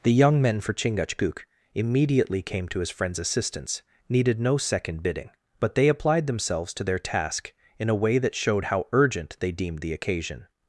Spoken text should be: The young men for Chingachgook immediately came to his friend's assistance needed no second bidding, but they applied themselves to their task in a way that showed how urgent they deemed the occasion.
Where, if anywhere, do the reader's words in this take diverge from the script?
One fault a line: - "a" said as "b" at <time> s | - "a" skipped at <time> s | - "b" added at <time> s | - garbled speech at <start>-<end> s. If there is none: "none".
none